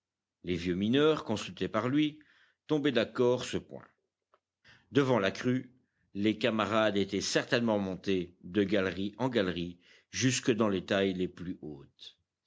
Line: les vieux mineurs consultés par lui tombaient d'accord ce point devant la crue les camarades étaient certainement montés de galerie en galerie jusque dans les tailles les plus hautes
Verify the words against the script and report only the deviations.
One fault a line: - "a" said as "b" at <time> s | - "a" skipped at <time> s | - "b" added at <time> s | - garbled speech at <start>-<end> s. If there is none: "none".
none